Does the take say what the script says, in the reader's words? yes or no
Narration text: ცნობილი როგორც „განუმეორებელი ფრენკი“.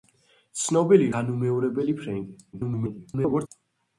no